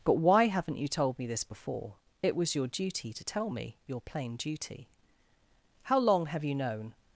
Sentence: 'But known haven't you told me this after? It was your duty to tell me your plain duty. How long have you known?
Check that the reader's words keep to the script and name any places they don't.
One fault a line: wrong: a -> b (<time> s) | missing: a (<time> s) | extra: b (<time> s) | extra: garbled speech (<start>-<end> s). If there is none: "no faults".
wrong: known -> why (0.2 s)
wrong: after -> before (1.4 s)